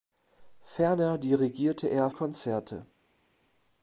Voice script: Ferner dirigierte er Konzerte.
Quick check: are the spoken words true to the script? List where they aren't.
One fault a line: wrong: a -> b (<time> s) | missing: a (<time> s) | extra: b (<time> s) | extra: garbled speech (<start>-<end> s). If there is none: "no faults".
no faults